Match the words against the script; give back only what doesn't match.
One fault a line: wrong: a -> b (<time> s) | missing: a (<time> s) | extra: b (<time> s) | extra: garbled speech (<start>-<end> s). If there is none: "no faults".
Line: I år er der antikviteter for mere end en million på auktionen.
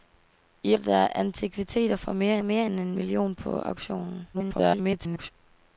missing: år (0.8 s)
extra: mere (2.4 s)
extra: garbled speech (4.3-5.3 s)